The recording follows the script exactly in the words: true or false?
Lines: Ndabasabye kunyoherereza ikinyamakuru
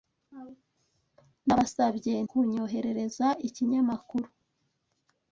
true